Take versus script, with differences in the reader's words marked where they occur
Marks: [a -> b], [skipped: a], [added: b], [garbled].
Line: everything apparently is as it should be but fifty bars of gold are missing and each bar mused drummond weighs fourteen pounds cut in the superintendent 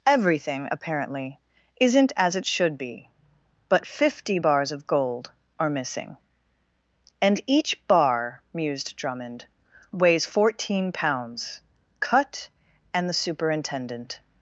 everything apparently [is -> isn't] as it should be but fifty bars of gold are missing and each bar mused drummond weighs fourteen pounds cut [in -> and] the superintendent